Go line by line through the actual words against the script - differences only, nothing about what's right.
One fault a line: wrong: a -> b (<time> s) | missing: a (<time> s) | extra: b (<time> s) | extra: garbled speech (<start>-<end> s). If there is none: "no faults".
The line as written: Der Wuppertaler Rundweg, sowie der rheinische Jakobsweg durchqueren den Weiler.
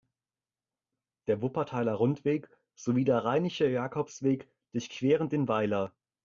no faults